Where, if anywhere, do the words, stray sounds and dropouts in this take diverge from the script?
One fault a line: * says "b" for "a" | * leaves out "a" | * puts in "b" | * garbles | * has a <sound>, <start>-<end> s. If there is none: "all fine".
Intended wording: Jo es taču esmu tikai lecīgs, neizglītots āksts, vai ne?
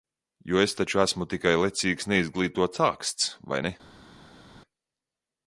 all fine